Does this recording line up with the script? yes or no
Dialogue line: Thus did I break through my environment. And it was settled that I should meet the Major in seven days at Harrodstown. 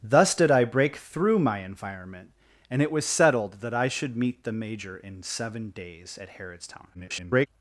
no